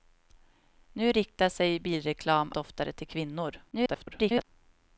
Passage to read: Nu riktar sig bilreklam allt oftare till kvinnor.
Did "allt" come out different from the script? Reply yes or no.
yes